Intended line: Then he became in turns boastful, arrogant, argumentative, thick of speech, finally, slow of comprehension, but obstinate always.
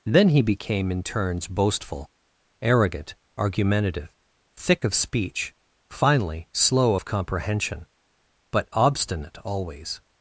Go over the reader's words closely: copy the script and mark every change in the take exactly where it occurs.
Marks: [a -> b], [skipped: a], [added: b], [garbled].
Then he became in turns boastful, arrogant, argumentative, thick of speech, finally, slow of comprehension, but obstinate always.